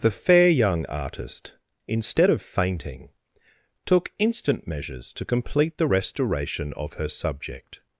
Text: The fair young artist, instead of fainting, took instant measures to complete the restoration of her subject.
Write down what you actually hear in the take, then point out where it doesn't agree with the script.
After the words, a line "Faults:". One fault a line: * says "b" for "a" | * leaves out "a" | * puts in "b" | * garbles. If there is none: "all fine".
The fair young artist, instead of fainting, took instant measures to complete the restoration of her subject.
Faults:
all fine